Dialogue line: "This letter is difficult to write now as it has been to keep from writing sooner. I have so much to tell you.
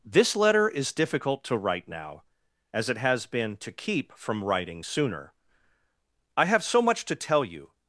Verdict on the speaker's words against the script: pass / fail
pass